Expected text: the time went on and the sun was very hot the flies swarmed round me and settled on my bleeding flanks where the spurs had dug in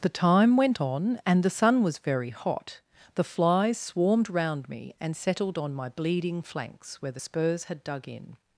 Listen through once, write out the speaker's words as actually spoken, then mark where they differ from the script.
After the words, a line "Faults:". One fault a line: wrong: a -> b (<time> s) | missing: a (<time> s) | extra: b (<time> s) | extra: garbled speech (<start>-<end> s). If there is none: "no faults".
the time went on and the sun was very hot the flies swarmed round me and settled on my bleeding flanks where the spurs had dug in
Faults:
no faults